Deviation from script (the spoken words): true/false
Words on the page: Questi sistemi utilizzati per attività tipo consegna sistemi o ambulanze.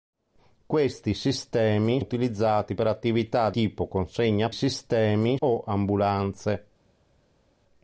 false